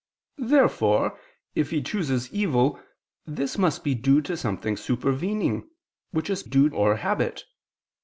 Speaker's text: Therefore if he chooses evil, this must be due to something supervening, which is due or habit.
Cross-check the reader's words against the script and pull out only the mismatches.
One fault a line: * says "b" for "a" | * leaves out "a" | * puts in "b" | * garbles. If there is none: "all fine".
all fine